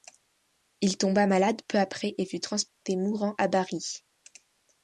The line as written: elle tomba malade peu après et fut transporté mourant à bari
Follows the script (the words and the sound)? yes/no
no